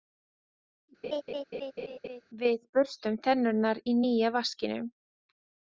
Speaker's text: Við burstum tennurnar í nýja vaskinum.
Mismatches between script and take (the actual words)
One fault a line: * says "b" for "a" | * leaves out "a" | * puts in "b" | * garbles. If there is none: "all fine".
all fine